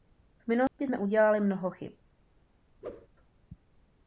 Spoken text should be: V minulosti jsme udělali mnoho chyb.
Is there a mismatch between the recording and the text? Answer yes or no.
no